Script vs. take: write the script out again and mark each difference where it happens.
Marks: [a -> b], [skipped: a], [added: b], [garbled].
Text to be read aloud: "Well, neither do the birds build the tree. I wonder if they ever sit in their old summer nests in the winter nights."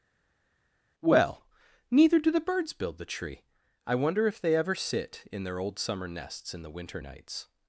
"Well, neither do the birds build the tree. I wonder if they ever sit in their old summer nests in the winter nights."